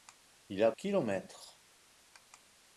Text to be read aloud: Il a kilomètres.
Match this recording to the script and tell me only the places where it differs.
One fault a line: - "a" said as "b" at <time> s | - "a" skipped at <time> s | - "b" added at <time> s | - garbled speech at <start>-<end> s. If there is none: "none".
none